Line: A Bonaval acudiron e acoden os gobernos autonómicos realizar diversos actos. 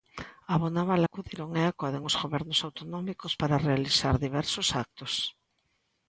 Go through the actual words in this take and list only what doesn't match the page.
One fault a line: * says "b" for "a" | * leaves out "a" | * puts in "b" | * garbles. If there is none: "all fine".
* puts in "para"